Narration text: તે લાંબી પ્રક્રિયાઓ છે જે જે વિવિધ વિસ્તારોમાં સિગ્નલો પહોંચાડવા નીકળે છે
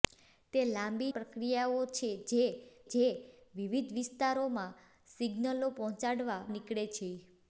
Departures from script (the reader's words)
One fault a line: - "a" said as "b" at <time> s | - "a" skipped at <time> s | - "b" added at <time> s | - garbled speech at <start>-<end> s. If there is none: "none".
none